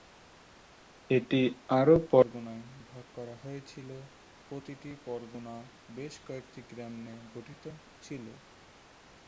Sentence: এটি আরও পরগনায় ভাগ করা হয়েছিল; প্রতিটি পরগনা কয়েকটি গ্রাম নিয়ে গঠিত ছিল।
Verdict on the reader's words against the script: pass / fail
fail